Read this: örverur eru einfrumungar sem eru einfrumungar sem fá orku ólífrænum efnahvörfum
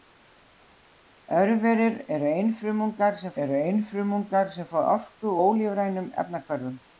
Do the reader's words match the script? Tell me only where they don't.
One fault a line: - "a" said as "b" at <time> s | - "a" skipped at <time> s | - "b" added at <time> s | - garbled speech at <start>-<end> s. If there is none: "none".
none